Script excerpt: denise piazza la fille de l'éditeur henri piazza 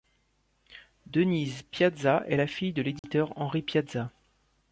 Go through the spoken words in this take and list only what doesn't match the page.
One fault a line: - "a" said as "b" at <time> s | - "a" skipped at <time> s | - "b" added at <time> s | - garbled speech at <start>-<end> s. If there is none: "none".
- "est" added at 2.3 s